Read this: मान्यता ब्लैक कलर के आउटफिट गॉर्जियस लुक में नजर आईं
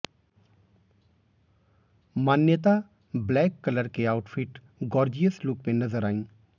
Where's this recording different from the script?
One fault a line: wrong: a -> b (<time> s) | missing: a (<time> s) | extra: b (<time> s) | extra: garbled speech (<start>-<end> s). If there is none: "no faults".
no faults